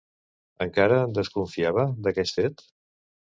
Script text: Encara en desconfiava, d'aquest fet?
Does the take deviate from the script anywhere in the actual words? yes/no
no